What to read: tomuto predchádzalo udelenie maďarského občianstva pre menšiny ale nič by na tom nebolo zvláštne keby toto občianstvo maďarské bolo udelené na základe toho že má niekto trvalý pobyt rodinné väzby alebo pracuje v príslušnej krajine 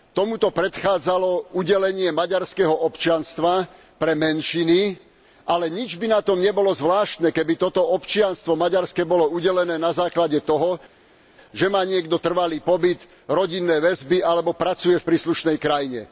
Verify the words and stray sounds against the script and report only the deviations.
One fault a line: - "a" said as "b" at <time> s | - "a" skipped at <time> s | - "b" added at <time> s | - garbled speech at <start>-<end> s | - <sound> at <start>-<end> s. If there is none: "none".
none